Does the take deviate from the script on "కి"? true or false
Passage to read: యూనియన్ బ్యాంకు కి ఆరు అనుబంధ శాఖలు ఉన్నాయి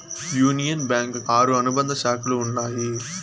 true